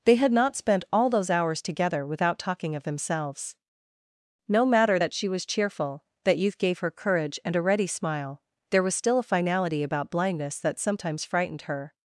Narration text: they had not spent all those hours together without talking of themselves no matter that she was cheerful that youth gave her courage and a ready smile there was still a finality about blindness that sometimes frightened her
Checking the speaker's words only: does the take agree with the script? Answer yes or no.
yes